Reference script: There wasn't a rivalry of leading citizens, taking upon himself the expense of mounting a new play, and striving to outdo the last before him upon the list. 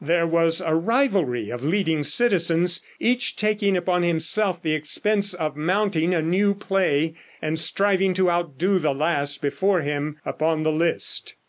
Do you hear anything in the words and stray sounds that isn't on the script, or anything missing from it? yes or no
yes